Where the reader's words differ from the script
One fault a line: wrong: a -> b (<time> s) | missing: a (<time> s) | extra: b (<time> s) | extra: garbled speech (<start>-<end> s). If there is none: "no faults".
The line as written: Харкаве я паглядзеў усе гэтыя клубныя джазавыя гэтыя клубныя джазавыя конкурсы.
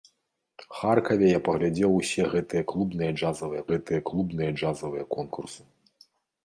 no faults